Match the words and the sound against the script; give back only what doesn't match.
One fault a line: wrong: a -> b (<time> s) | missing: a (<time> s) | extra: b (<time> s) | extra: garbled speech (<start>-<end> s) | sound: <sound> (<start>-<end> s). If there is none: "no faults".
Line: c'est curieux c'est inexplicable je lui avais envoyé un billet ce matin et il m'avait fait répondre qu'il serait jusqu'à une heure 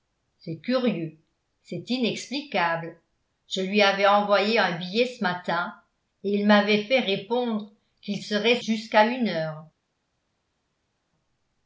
no faults